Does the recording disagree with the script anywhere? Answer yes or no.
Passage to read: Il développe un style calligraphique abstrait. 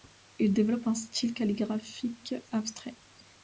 no